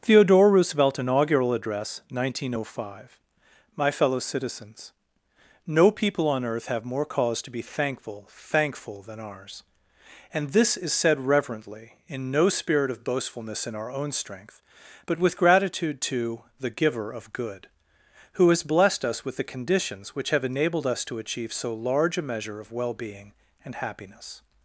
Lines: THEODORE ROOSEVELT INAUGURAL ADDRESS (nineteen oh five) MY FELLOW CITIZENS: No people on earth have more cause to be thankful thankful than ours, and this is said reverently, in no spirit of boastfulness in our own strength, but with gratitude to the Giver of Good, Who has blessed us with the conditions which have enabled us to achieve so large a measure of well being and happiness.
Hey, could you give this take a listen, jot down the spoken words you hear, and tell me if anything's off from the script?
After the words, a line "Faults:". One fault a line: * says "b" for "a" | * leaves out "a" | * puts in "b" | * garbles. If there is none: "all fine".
THEODORE ROOSEVELT INAUGURAL ADDRESS (nineteen oh five) MY FELLOW CITIZENS: No people on earth have more cause to be thankful thankful than ours, and this is said reverently, in no spirit of boastfulness in our own strength, but with gratitude to the Giver of Good, Who has blessed us with the conditions which have enabled us to achieve so large a measure of well being and happiness.
Faults:
all fine